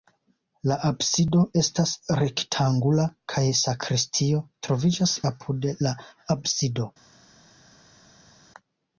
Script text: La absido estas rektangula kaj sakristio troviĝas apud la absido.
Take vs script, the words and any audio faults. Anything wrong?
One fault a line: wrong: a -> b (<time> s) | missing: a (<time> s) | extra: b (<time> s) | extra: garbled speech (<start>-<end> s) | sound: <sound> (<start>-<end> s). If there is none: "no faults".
no faults